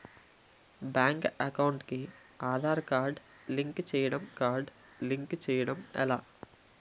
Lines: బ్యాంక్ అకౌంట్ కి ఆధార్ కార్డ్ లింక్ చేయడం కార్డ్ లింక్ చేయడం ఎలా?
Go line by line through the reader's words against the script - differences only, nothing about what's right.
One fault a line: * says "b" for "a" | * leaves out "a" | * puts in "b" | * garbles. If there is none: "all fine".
all fine